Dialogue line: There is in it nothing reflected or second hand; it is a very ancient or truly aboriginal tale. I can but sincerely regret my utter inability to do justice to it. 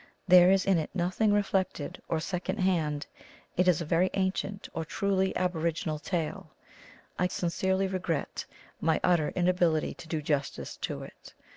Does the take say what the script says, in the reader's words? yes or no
no